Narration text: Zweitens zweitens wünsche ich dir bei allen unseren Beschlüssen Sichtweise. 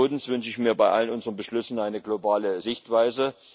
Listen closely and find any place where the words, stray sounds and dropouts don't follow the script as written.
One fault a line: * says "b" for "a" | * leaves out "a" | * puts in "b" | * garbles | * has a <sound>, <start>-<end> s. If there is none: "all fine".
* leaves out "zweitens"
* says "mir" for "dir"
* puts in "eine globale"